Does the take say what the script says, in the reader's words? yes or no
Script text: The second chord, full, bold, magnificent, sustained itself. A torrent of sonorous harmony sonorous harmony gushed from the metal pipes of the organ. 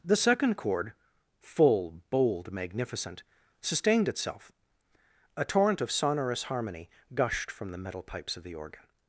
no